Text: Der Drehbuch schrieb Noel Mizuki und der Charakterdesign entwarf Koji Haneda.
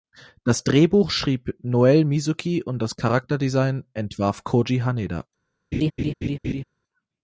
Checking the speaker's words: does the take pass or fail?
fail